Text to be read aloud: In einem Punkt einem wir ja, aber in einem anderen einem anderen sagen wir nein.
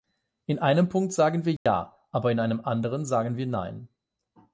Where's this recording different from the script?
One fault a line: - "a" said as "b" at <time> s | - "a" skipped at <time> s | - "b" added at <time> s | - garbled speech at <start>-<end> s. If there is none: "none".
- "einem" said as "sagen" at 1.1 s
- "einem anderen" skipped at 3.0 s